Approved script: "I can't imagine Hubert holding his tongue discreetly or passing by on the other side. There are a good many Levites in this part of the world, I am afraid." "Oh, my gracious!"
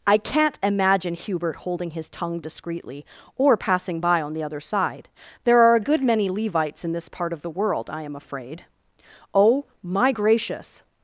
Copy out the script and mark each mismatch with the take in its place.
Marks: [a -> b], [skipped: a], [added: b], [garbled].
"I can't imagine Hubert holding his tongue discreetly or passing by on the other side. There are a good many Levites in this part of the world, I am afraid." "Oh, my gracious!"